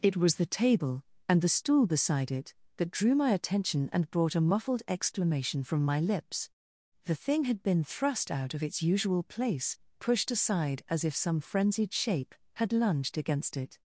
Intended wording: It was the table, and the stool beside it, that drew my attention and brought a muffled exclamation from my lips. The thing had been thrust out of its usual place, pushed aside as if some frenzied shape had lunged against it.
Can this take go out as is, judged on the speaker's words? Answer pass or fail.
pass